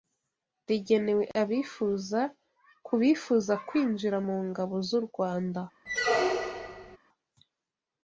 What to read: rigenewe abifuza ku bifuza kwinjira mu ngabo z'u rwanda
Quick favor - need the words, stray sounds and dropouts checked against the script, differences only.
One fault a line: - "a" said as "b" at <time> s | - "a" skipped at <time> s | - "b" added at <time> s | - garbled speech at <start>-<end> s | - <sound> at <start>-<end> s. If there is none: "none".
- squeak at 5.9-7.0 s